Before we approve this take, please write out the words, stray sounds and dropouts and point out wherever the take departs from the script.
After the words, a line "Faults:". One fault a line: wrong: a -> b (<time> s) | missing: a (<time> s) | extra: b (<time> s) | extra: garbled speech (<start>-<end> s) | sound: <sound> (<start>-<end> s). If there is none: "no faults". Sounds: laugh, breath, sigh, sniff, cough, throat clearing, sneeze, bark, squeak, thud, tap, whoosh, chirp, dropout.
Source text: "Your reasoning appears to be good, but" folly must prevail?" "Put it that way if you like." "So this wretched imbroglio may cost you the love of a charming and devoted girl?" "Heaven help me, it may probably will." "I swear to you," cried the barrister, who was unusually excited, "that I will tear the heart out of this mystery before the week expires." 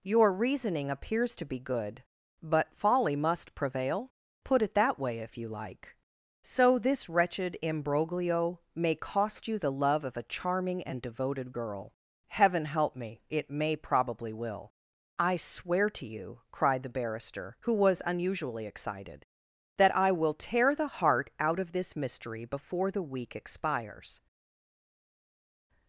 "Your reasoning appears to be good, but" folly must prevail?" "Put it that way if you like." "So this wretched imbroglio may cost you the love of a charming and devoted girl?" "Heaven help me, it may probably will." "I swear to you," cried the barrister, who was unusually excited, "that I will tear the heart out of this mystery before the week expires."
Faults:
no faults